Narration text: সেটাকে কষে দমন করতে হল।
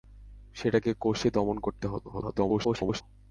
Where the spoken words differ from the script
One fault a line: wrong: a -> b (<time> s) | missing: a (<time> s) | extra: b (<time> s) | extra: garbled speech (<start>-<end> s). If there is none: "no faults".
extra: garbled speech (2.1-3.0 s)